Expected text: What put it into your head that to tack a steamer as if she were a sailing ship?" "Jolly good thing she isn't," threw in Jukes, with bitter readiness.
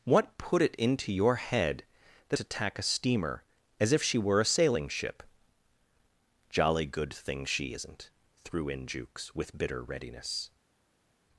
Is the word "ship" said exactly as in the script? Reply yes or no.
yes